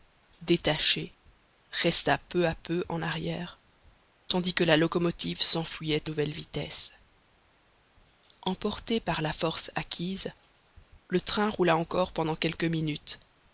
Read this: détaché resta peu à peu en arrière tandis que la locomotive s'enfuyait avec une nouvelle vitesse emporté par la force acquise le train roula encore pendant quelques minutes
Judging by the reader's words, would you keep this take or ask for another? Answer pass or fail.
fail